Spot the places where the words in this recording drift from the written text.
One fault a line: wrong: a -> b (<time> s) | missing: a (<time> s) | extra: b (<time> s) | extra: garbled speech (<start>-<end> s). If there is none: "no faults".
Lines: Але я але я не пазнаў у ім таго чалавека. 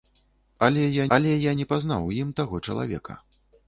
no faults